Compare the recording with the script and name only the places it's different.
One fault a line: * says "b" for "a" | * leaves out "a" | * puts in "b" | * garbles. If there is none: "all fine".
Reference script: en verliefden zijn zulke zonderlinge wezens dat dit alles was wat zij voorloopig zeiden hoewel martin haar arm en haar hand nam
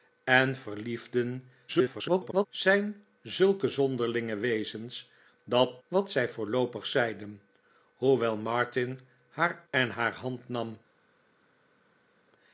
* garbles
* leaves out "dit alles was"
* leaves out "arm"